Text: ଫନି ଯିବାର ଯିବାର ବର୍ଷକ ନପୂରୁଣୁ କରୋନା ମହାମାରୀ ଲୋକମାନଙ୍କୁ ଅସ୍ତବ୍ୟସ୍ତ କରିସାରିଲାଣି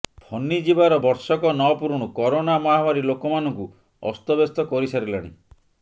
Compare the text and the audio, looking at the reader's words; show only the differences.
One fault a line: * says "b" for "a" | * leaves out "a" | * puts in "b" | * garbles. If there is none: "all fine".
* leaves out "ଯିବାର"